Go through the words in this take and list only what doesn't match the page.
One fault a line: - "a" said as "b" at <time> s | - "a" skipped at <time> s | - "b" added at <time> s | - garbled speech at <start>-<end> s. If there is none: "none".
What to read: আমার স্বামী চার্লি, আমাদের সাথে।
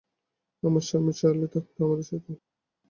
- "থাকত" added at 1.5 s